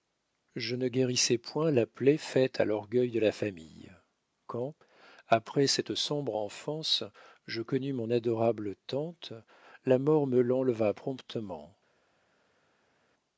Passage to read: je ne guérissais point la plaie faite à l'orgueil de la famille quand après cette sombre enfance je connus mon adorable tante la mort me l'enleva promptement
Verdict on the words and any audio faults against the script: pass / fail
pass